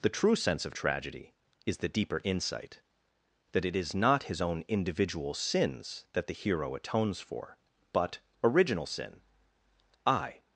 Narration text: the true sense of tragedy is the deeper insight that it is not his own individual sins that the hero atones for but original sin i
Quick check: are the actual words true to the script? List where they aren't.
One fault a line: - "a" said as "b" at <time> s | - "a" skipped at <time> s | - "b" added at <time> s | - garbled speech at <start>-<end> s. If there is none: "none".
none